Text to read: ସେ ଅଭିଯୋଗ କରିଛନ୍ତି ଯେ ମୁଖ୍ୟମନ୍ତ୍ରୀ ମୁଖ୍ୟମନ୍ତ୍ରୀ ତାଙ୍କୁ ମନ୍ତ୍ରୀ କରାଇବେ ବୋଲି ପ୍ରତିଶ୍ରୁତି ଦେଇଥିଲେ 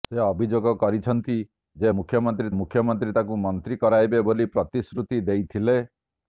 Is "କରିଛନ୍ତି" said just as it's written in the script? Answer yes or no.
yes